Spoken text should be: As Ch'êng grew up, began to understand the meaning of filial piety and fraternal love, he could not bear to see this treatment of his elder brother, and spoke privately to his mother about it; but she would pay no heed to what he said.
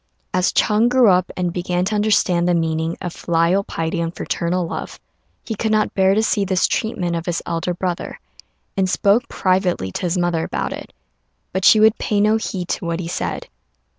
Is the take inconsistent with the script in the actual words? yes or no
yes